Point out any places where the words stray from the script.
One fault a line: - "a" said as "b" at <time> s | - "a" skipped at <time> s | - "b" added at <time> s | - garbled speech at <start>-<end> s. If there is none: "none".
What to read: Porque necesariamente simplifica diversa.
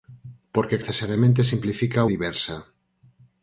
none